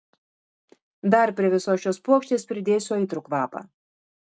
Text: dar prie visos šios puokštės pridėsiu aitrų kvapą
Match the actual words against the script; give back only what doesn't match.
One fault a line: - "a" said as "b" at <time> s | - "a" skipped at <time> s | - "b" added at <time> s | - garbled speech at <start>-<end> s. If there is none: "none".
none